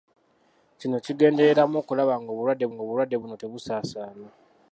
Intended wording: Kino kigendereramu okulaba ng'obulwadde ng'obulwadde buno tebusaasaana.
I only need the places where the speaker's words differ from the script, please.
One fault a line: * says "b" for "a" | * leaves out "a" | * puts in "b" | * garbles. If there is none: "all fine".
all fine